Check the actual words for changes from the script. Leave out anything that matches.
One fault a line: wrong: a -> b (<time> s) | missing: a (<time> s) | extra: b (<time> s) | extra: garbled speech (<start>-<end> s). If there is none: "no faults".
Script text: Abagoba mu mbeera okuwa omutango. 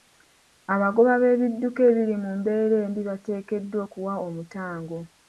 extra: b'ebidduka ebiri (1.2 s)
extra: embi bateekeddwa (2.9 s)